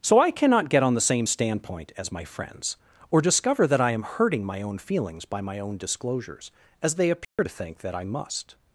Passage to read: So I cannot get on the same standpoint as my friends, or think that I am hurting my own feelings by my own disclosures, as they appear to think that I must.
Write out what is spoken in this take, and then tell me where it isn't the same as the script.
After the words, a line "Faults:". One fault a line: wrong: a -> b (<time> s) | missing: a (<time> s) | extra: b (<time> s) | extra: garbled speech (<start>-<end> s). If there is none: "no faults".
So I cannot get on the same standpoint as my friends, or discover that I am hurting my own feelings by my own disclosures, as they appear to think that I must.
Faults:
wrong: think -> discover (3.2 s)